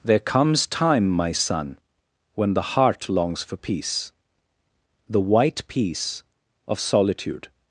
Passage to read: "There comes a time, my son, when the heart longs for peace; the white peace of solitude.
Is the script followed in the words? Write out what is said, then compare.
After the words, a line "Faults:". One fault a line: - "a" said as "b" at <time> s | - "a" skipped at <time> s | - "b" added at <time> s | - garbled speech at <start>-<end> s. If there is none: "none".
"There comes time, my son, when the heart longs for peace; the white peace of solitude.
Faults:
- "a" skipped at 0.7 s